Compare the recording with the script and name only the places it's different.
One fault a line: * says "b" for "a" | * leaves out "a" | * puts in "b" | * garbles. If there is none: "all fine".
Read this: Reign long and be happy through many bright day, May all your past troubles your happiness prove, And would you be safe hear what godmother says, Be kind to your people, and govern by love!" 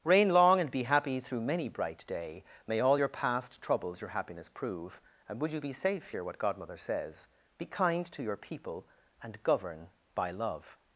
all fine